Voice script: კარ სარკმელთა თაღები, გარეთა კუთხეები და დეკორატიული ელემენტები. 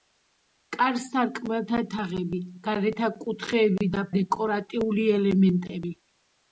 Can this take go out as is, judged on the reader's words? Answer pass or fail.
pass